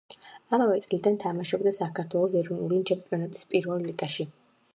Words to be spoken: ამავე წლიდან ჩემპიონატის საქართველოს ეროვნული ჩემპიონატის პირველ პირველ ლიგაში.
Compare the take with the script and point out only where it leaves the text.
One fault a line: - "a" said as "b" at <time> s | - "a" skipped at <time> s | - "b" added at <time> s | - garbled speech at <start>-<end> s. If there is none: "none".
- "ჩემპიონატის" said as "თამაშობდა" at 1.2 s
- "პირველ" skipped at 3.9 s